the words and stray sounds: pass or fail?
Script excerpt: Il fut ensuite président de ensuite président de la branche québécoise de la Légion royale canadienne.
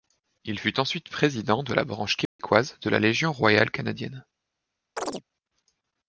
fail